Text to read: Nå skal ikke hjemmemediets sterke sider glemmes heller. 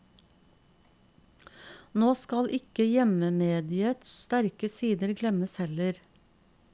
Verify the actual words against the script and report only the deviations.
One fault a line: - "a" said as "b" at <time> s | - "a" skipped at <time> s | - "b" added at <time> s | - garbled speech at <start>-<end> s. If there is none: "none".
none